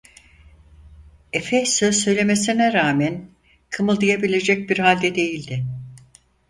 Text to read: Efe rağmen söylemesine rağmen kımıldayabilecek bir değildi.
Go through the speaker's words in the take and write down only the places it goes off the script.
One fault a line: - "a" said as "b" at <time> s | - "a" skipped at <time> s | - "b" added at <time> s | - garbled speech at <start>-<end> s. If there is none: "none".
- "rağmen" said as "söz" at 1.6 s
- "halde" added at 4.8 s